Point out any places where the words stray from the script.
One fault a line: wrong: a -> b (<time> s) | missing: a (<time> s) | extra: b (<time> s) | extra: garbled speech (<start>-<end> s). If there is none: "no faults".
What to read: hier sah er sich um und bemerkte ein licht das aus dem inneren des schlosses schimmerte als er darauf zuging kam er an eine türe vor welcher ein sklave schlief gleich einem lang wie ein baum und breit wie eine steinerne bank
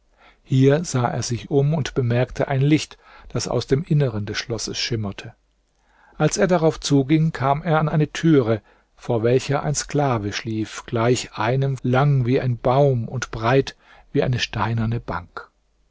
no faults